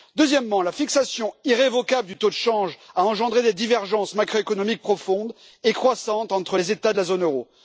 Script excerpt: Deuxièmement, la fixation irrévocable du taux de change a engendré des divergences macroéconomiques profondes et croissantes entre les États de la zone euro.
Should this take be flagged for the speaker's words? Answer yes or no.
no